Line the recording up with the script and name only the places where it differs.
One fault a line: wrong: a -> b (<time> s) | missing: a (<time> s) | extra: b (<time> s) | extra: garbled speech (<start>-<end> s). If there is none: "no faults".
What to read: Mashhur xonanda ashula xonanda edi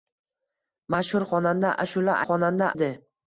no faults